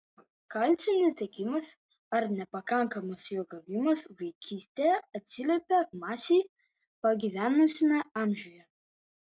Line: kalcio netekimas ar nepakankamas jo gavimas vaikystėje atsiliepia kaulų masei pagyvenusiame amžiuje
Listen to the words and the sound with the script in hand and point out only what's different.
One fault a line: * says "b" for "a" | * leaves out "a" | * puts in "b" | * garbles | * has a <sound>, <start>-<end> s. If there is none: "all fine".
* leaves out "kaulų"